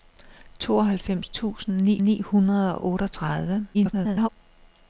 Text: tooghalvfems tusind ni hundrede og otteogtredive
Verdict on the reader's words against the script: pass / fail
fail